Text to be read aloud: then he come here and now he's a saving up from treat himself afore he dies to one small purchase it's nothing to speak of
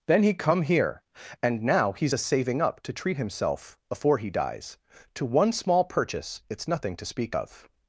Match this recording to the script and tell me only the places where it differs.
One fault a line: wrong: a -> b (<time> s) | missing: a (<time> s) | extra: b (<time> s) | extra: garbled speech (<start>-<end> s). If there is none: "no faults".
wrong: from -> to (2.8 s)